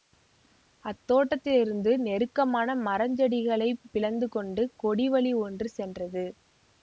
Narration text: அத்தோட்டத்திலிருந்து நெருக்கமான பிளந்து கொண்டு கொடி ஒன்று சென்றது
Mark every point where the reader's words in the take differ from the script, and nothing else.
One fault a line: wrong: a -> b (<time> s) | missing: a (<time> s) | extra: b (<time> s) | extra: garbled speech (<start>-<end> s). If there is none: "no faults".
extra: மரஞ்செடிகளைப் (2.8 s)
extra: வழி (5.1 s)